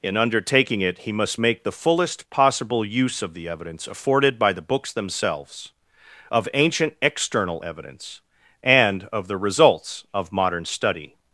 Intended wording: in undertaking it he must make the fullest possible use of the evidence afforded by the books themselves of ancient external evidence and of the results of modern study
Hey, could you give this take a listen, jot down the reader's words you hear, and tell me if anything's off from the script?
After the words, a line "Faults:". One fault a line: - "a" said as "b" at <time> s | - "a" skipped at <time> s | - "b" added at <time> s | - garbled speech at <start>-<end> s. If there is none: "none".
in undertaking it he must make the fullest possible use of the evidence afforded by the books themselves of ancient external evidence and of the results of modern study
Faults:
none